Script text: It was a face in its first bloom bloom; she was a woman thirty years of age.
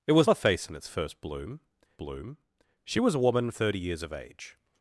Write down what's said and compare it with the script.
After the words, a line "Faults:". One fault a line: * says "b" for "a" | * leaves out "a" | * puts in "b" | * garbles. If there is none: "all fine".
It was a face in its first bloom bloom; she was a woman thirty years of age.
Faults:
all fine